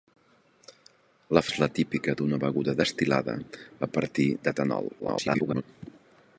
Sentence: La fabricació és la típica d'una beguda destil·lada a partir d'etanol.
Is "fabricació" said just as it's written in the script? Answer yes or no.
no